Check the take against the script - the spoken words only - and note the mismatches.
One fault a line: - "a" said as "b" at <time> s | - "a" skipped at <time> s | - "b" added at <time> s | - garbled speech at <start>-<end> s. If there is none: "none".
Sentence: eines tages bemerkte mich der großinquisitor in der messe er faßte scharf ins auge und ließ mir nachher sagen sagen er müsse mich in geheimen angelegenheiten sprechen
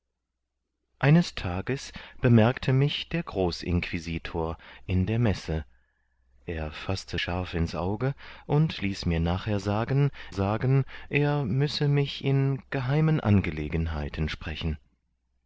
none